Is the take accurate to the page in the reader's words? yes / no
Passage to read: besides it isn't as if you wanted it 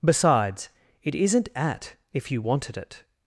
no